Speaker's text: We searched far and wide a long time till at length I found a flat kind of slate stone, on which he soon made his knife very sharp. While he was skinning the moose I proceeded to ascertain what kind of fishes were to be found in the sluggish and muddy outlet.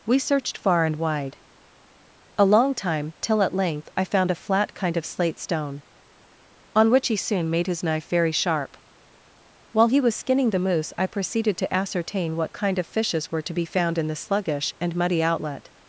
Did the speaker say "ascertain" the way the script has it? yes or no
yes